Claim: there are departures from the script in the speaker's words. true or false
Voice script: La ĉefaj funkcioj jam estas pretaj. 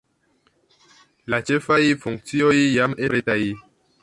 true